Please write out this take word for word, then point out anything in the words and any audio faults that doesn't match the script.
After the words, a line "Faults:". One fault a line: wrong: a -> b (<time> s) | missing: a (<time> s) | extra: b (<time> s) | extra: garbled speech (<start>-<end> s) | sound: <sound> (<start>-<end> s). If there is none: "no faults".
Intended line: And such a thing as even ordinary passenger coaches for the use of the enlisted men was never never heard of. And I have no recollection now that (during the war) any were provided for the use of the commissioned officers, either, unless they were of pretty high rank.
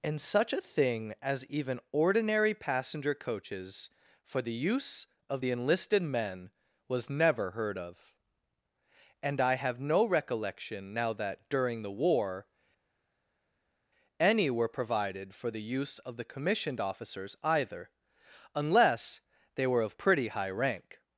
And such a thing as even ordinary passenger coaches for the use of the enlisted men was never heard of. And I have no recollection now that (during the war) any were provided for the use of the commissioned officers, either, unless they were of pretty high rank.
Faults:
missing: never (7.5 s)